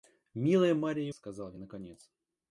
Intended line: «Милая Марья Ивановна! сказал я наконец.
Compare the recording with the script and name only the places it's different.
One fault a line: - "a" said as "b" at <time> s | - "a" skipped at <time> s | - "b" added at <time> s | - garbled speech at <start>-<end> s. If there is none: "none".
- "Ивановна" skipped at 1.1 s